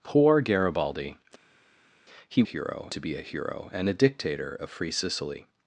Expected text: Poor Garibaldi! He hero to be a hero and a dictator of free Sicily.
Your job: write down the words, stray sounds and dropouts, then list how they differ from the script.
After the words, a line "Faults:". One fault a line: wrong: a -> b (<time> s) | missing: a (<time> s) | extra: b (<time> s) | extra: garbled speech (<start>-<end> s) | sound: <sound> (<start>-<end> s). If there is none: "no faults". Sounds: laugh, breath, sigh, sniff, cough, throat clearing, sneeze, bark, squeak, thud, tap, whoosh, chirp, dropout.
Poor Garibaldi! He hero to be a hero and a dictator of free Sicily.
Faults:
no faults